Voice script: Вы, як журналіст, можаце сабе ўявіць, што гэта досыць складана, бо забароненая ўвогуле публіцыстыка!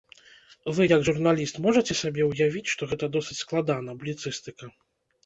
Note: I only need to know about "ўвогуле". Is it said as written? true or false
false